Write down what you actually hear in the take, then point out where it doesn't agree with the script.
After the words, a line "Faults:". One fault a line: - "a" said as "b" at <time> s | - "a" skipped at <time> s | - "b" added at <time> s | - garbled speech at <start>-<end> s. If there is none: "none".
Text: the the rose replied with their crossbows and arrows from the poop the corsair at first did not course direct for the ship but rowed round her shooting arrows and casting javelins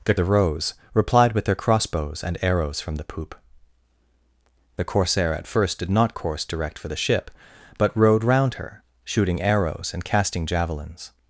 the the rose replied with their crossbows and arrows from the poop the corsair at first did not course direct for the ship but rowed round her shooting arrows and casting javelins
Faults:
none